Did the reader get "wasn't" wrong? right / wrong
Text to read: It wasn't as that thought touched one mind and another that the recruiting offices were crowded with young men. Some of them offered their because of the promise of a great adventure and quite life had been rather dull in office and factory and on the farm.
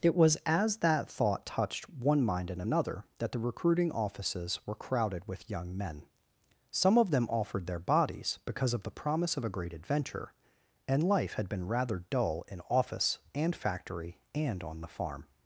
wrong